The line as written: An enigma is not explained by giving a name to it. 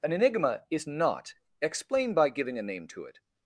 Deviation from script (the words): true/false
true